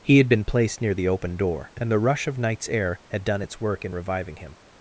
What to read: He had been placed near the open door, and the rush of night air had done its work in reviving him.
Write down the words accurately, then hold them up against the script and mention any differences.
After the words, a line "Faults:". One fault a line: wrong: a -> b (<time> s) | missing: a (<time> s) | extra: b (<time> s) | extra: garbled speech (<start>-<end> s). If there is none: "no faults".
He had been placed near the open door, and the rush of nights air had done its work in reviving him.
Faults:
wrong: night -> nights (2.4 s)